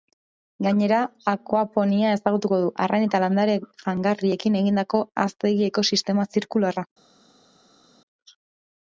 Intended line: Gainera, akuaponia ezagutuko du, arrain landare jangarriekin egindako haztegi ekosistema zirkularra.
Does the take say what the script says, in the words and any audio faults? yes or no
no